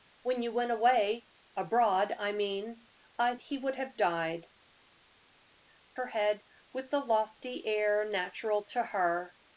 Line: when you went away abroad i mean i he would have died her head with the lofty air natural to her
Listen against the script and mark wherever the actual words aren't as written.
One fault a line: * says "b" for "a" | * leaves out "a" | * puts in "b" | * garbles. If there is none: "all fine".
all fine